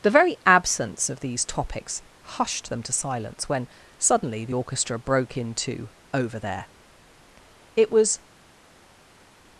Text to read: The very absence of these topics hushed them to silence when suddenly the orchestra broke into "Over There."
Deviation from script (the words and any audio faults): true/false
true